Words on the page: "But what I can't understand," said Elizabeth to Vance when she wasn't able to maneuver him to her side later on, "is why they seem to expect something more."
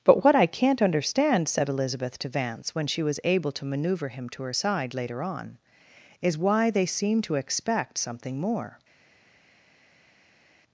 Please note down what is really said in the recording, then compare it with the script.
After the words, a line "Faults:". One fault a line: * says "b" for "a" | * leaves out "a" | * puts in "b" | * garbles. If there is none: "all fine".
"But what I can't understand," said Elizabeth to Vance when she was able to maneuver him to her side later on, "is why they seem to expect something more."
Faults:
* says "was" for "wasn't"